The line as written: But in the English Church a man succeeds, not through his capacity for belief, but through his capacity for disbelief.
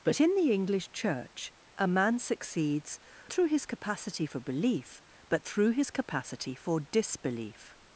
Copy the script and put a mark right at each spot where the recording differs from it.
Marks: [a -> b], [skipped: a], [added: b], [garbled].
But in the English Church a man succeeds, [skipped: not] through his capacity for belief, but through his capacity for disbelief.